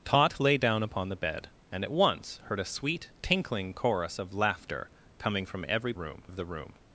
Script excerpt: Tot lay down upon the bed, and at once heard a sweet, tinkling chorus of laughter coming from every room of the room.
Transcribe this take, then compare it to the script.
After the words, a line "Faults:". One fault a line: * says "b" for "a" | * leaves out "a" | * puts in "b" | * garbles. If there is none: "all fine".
Tot lay down upon the bed, and at once heard a sweet, tinkling chorus of laughter coming from every room of the room.
Faults:
all fine